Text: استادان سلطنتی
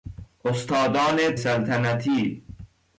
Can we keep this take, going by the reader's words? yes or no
yes